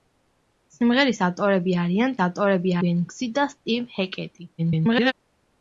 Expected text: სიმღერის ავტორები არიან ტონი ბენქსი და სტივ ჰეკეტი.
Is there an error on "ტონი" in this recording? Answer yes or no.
yes